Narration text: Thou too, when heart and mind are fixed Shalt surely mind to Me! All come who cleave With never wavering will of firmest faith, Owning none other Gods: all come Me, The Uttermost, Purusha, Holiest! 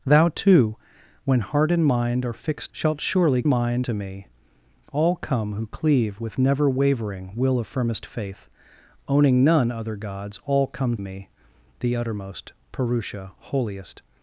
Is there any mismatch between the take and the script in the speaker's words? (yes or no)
no